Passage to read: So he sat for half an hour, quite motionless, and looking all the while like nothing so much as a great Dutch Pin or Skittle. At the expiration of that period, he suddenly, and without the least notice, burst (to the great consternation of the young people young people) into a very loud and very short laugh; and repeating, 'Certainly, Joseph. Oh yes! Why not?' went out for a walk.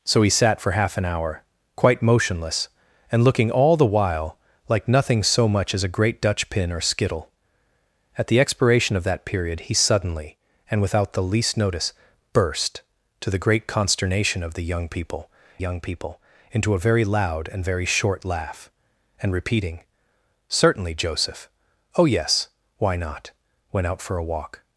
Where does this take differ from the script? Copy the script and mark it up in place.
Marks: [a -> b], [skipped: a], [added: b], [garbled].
So he sat for half an hour, quite motionless, and looking all the while like nothing so much as a great Dutch Pin or Skittle. At the expiration of that period, he suddenly, and without the least notice, burst (to the great consternation of the young people young people) into a very loud and very short laugh; and repeating, 'Certainly, Joseph. Oh yes! Why not?' went out for a walk.